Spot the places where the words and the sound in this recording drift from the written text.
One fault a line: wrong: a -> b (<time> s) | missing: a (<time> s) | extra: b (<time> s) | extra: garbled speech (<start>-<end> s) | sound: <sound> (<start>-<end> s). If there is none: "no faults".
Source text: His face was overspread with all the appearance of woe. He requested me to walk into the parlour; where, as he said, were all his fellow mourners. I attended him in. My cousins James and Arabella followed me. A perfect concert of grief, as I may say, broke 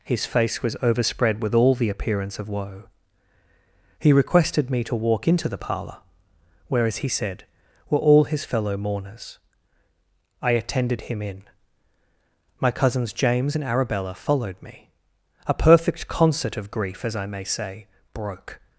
no faults